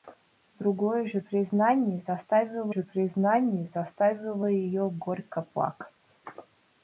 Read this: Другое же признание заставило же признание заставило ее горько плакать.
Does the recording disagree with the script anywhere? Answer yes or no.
no